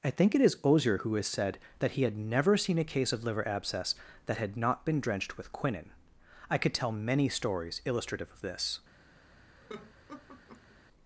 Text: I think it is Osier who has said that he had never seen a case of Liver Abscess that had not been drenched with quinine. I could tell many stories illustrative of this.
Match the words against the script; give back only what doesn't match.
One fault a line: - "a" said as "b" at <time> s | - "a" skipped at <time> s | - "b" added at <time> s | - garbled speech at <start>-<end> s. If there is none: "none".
none